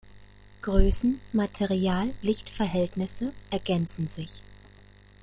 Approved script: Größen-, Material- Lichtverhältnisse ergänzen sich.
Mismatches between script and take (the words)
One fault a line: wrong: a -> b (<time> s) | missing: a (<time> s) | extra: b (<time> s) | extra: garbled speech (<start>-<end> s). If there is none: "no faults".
no faults